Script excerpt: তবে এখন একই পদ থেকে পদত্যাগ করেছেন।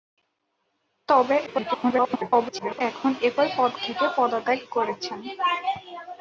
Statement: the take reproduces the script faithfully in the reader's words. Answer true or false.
false